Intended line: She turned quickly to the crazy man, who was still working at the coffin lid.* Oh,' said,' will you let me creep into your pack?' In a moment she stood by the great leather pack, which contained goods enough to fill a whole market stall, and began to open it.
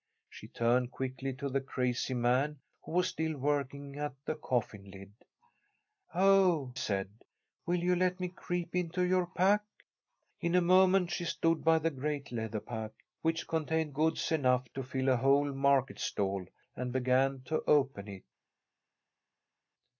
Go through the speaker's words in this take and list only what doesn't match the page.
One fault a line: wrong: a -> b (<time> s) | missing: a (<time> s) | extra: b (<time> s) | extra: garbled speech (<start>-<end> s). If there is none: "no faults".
no faults